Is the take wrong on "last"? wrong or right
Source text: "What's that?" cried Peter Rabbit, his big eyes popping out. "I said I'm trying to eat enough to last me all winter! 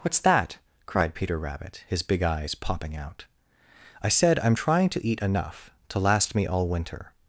right